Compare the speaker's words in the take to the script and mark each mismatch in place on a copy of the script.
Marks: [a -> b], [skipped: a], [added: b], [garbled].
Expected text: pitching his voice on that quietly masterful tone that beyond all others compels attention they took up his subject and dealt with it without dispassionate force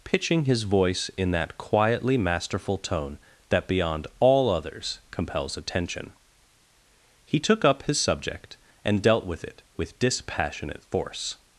pitching his voice [on -> in] that quietly masterful tone that beyond all others compels attention [they -> he] took up his subject and dealt with it [without -> with] dispassionate force